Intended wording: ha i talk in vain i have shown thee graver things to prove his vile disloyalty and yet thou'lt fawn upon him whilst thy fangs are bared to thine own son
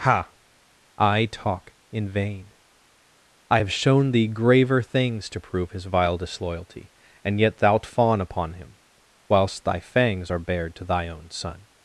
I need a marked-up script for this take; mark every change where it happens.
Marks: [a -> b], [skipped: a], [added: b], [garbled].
ha i talk in vain i have shown thee graver things to prove his vile disloyalty and yet thou'lt fawn upon him whilst thy fangs are bared to [thine -> thy] own son